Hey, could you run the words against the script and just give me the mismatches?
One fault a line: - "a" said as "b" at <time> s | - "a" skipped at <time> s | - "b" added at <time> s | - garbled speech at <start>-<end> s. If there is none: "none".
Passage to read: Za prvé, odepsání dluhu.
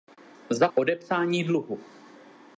- "prvé" skipped at 0.7 s